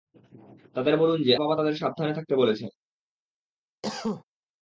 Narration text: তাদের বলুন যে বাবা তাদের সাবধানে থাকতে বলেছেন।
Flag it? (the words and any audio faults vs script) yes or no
yes